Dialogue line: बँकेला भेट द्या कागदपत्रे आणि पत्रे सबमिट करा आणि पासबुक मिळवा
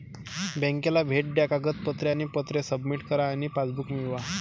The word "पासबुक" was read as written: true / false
true